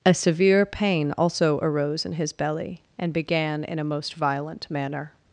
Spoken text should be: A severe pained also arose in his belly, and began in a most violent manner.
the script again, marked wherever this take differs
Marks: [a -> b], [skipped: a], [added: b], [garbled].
A severe [pained -> pain] also arose in his belly, and began in a most violent manner.